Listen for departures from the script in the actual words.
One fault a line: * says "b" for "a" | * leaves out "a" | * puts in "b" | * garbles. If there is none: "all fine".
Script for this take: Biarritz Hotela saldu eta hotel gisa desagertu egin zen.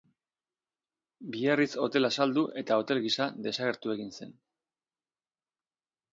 all fine